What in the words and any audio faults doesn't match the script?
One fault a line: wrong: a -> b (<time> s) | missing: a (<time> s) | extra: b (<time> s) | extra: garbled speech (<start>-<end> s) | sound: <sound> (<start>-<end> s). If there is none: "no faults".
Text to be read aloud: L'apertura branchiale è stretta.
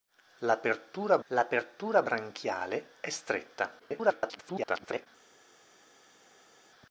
extra: l'apertura (1.3 s)
extra: garbled speech (3.8-5.1 s)